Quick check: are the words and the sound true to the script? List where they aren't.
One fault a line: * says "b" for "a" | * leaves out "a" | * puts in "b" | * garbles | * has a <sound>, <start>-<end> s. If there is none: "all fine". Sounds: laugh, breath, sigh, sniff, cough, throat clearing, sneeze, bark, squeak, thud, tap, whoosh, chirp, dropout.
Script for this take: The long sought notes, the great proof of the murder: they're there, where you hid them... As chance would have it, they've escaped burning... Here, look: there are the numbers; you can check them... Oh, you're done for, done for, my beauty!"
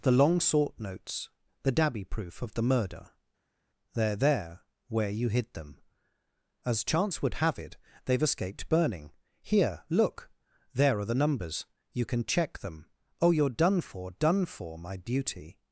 * says "dabby" for "great"